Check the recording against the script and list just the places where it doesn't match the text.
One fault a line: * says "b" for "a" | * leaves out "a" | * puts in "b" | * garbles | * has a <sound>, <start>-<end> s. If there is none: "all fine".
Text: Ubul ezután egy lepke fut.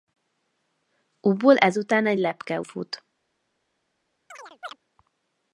* has a chirp, 4.3-4.8 s